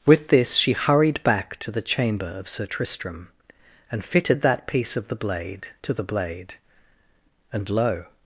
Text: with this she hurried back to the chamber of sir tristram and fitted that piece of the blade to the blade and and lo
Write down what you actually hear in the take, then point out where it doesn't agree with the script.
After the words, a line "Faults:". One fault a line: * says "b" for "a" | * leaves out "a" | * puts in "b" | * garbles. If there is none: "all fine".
with this she hurried back to the chamber of sir tristram and fitted that piece of the blade to the blade and lo
Faults:
* leaves out "and"